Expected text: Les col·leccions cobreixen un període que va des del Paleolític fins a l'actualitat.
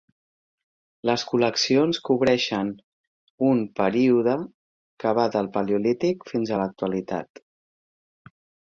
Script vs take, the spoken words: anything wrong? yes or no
yes